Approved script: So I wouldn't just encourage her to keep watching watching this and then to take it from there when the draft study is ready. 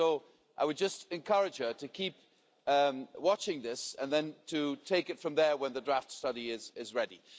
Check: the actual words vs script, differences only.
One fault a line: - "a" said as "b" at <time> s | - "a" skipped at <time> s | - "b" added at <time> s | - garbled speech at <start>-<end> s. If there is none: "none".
- "wouldn't" said as "would" at 0.7 s
- "watching" skipped at 3.6 s